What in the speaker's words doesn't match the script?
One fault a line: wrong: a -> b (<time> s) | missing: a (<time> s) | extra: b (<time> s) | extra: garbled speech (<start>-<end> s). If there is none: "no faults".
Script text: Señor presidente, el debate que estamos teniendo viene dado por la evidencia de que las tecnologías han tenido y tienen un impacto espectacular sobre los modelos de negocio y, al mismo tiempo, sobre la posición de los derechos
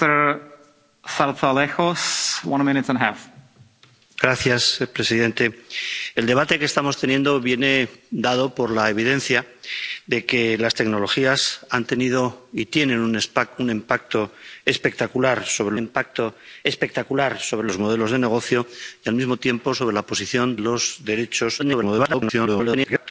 extra: impacto espectacular sobre (15.8 s)
missing: de (20.6 s)
extra: garbled speech (21.6-23.1 s)